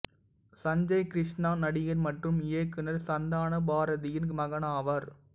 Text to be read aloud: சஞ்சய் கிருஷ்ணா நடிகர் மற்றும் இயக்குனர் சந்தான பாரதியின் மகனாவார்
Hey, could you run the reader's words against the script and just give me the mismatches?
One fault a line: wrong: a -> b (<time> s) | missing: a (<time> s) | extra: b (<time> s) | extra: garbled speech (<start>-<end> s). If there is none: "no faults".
no faults